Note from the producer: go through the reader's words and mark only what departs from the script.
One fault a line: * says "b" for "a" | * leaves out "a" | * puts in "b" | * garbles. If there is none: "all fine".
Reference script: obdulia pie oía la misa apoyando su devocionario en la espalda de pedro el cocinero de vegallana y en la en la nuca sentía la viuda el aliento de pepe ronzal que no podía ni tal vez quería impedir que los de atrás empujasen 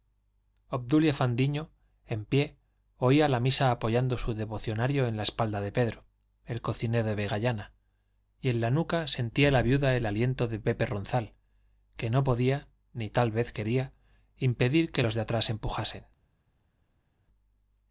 * puts in "fandiño en"
* leaves out "en la"